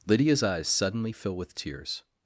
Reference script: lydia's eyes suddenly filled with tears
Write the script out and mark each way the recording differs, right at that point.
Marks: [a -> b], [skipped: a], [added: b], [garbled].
lydia's eyes suddenly [filled -> fill] with tears